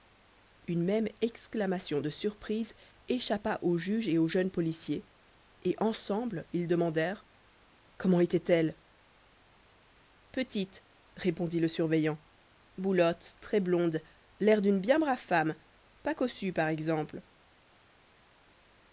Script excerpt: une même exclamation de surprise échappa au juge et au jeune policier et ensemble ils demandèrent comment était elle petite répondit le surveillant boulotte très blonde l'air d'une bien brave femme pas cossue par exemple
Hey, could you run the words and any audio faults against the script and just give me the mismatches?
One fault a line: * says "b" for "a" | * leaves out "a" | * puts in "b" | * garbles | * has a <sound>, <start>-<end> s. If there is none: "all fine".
all fine